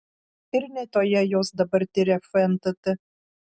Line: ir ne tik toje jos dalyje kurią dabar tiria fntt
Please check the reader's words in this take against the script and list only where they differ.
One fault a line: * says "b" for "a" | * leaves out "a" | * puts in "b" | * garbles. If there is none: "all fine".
* leaves out "tik"
* leaves out "dalyje kurią"